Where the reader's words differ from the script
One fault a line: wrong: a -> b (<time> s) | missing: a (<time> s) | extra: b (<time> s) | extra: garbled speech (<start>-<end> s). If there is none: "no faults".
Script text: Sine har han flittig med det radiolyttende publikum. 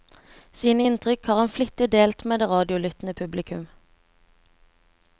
extra: inntrykk (0.9 s)
extra: delt (1.9 s)